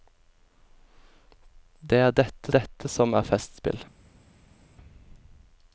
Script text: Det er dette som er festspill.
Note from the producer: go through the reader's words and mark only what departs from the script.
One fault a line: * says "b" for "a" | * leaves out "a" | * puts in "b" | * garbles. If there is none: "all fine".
* puts in "dette"